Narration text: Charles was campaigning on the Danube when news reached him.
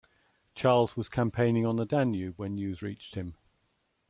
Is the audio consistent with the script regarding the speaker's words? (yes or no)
yes